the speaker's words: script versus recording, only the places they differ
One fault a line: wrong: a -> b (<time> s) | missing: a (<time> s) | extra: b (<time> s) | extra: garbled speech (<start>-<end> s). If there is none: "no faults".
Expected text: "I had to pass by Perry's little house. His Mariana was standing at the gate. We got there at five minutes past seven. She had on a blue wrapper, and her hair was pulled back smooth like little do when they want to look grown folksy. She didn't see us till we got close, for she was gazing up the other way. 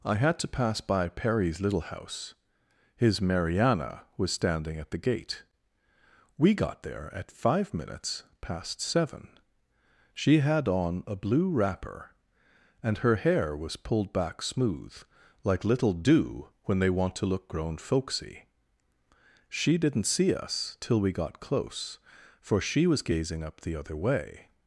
no faults